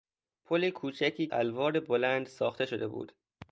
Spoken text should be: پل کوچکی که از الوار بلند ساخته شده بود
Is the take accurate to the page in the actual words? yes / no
no